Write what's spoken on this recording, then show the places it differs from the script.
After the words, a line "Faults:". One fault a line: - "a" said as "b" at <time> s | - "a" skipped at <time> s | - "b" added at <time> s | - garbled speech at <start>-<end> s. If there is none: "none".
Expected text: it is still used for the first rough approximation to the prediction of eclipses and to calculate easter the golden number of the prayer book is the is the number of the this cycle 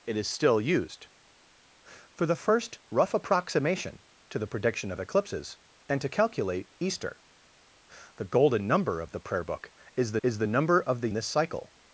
it is still used for the first rough approximation to the prediction of eclipses and to calculate easter the golden number of the prayer book is the is the number of the this cycle
Faults:
none